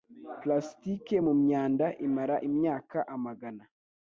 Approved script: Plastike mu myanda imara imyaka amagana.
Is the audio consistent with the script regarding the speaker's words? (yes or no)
yes